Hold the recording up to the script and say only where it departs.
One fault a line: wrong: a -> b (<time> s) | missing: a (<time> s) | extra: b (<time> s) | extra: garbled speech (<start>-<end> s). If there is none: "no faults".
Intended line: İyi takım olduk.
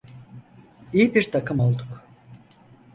extra: bir (1.1 s)